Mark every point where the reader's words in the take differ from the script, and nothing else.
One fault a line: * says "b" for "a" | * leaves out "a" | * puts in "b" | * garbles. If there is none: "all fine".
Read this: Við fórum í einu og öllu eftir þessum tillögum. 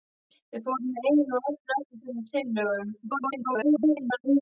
* garbles